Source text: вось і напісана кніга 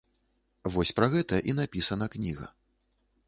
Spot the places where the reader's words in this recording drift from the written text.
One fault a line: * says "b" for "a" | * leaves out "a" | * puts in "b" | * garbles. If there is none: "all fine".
* puts in "пра гэта"